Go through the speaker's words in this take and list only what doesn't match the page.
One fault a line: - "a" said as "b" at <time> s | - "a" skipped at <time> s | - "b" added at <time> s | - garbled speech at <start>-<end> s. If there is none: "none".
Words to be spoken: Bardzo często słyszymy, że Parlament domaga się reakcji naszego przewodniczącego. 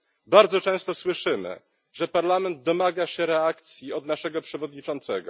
- "od" added at 3.9 s